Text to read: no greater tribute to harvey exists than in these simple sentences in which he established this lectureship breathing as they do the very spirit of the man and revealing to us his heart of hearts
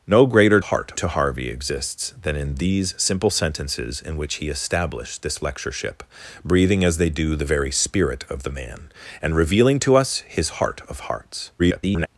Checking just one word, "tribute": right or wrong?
wrong